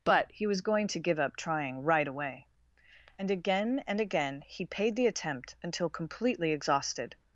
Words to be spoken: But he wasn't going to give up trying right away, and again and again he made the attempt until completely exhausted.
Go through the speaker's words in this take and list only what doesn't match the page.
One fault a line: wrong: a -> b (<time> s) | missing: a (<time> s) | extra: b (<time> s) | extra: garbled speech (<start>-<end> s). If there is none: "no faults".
wrong: wasn't -> was (0.5 s)
wrong: made -> paid (4.7 s)